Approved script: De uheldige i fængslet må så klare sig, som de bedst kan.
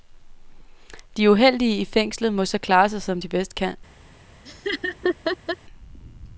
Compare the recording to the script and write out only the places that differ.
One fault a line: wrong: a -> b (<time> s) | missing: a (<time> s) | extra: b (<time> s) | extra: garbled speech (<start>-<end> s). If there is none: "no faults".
no faults